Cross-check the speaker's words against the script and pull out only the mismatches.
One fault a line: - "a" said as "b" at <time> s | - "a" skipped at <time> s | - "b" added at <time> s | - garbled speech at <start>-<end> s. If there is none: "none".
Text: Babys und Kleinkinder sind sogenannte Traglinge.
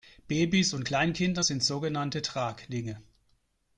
none